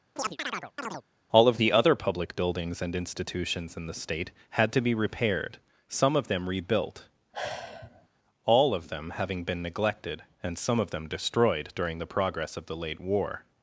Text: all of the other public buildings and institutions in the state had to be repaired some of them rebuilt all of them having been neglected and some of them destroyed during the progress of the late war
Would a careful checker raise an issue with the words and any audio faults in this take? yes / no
yes